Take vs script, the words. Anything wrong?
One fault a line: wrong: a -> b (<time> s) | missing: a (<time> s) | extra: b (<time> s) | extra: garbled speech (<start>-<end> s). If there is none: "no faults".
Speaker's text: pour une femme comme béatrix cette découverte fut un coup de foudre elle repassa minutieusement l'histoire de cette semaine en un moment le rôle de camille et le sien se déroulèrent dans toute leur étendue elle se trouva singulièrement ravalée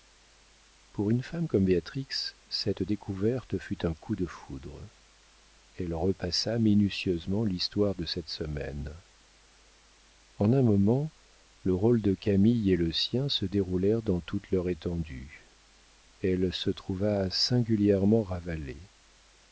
no faults